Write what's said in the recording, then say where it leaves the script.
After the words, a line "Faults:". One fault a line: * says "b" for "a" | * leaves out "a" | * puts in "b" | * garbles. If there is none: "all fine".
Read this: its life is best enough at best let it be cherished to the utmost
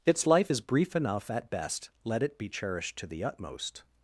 its life is brief enough at best let it be cherished to the utmost
Faults:
* says "brief" for "best"